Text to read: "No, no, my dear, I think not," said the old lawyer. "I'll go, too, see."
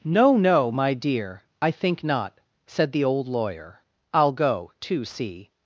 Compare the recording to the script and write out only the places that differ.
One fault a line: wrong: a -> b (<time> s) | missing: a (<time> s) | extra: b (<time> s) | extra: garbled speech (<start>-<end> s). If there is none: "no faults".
no faults